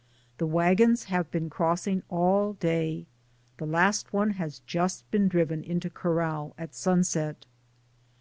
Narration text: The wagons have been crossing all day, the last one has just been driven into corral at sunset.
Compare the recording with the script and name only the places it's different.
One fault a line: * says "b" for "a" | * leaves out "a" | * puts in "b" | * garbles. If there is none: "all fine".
all fine